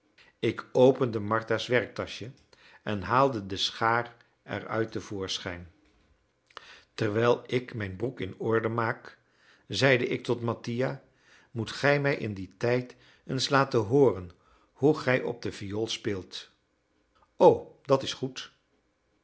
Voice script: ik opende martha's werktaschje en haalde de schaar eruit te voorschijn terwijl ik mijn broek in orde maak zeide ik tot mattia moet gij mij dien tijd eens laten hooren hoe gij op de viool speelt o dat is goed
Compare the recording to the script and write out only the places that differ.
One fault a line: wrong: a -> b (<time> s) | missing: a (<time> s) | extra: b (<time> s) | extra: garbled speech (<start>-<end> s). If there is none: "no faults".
extra: in (12.2 s)